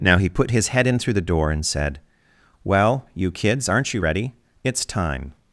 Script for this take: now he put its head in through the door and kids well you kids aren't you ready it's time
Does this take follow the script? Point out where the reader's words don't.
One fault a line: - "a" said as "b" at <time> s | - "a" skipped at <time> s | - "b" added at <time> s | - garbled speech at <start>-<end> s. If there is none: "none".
- "its" said as "his" at 0.5 s
- "kids" said as "said" at 1.6 s